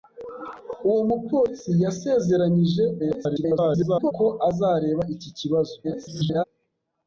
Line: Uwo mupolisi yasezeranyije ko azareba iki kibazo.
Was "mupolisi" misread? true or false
false